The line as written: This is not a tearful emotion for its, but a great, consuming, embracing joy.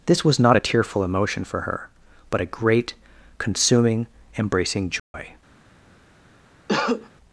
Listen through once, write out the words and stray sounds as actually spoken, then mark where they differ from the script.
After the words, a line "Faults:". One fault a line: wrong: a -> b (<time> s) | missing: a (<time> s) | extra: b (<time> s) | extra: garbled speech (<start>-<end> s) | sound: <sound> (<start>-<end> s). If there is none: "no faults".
This was not a tearful emotion for her, but a great, consuming, embracing joy.
Faults:
wrong: is -> was (0.2 s)
wrong: its -> her (1.6 s)
sound: dropout (5.0-5.1 s)
sound: cough (6.7-7.1 s)